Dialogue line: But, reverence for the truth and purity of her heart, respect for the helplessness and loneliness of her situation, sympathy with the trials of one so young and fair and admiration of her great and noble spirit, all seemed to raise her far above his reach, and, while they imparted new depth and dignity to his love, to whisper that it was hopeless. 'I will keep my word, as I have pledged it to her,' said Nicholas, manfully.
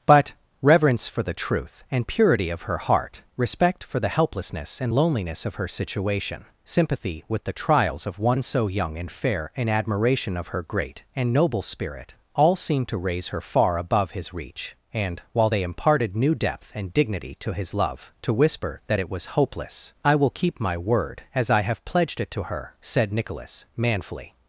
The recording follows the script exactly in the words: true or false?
true